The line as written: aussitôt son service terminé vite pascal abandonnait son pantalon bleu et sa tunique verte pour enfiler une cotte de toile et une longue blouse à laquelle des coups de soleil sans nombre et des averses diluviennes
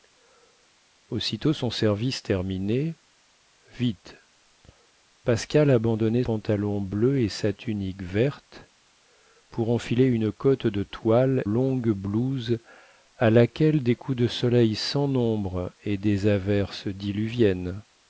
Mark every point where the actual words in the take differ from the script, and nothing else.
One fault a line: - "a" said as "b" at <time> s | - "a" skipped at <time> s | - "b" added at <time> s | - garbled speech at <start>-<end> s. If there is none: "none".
- "son" skipped at 6.2 s
- "et une" skipped at 11.4 s